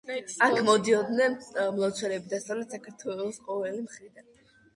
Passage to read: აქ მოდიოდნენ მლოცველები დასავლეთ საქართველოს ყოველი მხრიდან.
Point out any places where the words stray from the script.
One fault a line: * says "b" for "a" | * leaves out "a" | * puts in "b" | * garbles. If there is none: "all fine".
all fine